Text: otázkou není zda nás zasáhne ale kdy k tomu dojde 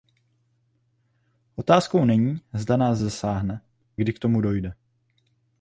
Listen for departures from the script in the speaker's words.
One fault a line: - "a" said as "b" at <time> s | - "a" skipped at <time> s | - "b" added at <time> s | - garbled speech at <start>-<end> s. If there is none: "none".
- "ale" skipped at 3.6 s